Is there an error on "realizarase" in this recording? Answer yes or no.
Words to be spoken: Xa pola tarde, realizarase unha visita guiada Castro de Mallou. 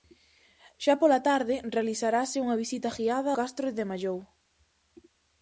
no